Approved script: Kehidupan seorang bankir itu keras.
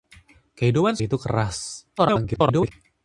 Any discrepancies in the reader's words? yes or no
yes